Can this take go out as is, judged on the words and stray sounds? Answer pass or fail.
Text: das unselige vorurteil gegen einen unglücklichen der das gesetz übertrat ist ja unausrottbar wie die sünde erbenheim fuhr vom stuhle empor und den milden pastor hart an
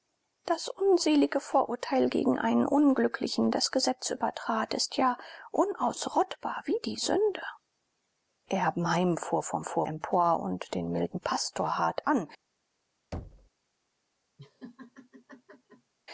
fail